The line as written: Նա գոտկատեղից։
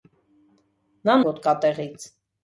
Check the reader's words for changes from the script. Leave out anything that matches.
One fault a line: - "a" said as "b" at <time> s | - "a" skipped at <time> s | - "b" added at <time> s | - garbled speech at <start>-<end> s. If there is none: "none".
none